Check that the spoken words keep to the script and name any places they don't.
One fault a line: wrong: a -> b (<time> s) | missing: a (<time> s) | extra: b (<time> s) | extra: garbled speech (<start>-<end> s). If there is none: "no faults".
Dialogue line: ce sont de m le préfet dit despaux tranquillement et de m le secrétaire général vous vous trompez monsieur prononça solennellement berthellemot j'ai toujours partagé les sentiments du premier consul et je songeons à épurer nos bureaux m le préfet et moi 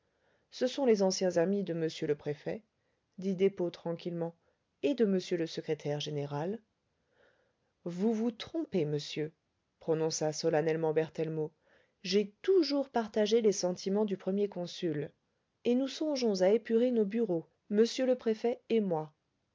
extra: les anciens amis (0.9 s)
wrong: je -> nous (15.8 s)